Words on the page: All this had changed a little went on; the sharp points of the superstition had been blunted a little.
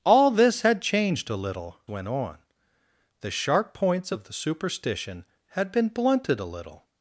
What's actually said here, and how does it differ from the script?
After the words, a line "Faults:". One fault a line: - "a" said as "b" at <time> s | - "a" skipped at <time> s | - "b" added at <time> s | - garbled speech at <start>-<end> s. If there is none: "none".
All this had changed a little went on; the sharp points of the superstition had been blunted a little.
Faults:
none